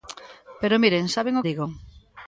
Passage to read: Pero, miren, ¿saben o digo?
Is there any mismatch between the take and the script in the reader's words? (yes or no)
no